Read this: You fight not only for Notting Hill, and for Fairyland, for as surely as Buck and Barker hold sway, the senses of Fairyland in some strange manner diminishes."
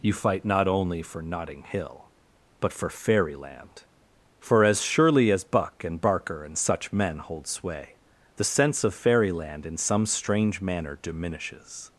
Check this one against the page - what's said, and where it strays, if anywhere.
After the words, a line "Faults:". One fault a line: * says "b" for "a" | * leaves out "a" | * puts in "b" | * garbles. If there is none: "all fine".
You fight not only for Notting Hill, but for Fairyland, for as surely as Buck and Barker and such men hold sway, the sense of Fairyland in some strange manner diminishes."
Faults:
* says "but" for "and"
* puts in "and such men"
* says "sense" for "senses"